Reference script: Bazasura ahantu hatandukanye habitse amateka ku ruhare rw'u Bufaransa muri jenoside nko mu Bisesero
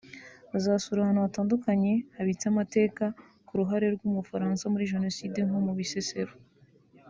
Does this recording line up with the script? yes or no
yes